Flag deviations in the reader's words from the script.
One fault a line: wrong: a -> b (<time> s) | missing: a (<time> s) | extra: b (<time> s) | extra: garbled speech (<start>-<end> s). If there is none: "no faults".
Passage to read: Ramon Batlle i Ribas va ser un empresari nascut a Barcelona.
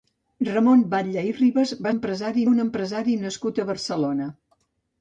wrong: ser -> empresari (1.9 s)